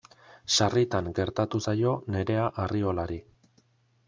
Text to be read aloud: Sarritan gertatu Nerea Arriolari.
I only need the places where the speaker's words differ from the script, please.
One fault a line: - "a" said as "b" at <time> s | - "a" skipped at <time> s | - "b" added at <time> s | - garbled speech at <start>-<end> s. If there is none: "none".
- "zaio" added at 1.6 s